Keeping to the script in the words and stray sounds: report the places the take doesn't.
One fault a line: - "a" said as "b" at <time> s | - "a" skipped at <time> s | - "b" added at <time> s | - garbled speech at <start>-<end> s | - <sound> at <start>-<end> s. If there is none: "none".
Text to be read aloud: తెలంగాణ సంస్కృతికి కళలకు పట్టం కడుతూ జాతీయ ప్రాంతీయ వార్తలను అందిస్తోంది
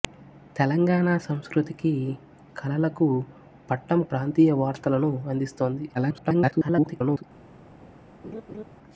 - "కడుతూ జాతీయ" skipped at 4.0 s
- garbled speech at 5.9-7.2 s
- laugh at 8.2-8.6 s